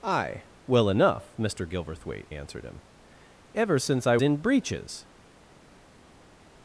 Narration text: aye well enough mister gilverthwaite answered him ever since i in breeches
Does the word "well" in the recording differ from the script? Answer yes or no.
no